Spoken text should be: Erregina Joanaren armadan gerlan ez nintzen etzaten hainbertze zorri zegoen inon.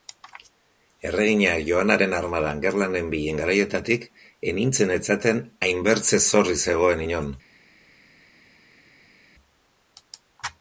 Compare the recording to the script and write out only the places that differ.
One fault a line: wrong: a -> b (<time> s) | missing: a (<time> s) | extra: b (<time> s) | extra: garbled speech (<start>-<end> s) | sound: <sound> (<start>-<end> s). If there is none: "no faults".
extra: nenbilen garaietatik (3.0 s)